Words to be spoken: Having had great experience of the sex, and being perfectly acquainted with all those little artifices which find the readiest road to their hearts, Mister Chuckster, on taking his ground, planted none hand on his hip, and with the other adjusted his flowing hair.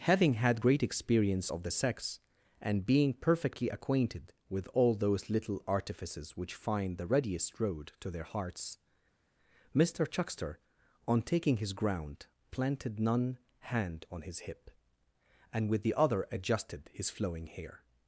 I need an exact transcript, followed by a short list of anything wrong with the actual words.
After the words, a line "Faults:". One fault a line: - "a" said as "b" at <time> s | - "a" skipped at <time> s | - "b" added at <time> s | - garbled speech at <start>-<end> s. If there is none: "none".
Having had great experience of the sex, and being perfectly acquainted with all those little artifices which find the readiest road to their hearts, Mister Chuckster, on taking his ground, planted none hand on his hip, and with the other adjusted his flowing hair.
Faults:
none